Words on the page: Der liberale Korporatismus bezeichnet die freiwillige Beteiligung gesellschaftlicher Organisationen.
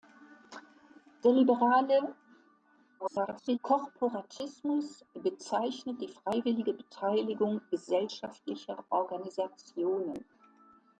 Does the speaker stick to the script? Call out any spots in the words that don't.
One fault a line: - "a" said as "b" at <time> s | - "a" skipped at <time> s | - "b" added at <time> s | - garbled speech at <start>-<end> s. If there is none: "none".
- garbled speech at 3.0-3.6 s